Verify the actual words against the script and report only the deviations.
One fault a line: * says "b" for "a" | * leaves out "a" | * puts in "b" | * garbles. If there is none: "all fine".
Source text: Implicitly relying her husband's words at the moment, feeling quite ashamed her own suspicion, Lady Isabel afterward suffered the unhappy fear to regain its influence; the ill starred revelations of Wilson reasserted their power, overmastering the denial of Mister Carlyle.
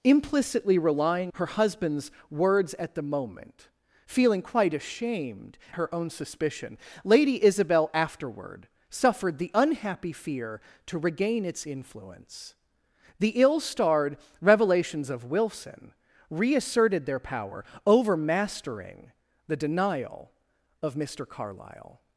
all fine